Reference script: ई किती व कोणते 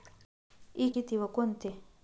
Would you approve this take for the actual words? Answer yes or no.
yes